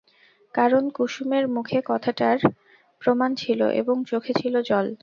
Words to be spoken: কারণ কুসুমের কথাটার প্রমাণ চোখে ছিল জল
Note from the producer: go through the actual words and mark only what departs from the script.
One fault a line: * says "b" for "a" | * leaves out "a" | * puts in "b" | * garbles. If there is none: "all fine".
* puts in "মুখে"
* puts in "ছিল এবং"